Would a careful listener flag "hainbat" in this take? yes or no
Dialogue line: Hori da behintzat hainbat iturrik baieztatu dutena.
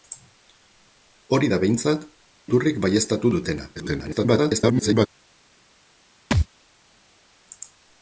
yes